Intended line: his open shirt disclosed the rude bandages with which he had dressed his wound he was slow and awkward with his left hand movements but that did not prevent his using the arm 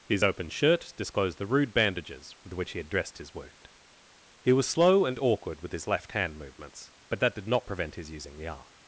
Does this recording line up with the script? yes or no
yes